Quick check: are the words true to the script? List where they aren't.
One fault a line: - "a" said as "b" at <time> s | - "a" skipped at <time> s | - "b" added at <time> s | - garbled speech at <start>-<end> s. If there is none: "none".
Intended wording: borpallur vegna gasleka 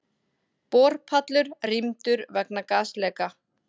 - "rýmdur" added at 1.7 s